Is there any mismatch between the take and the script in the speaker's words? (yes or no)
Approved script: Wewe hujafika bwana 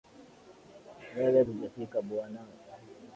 no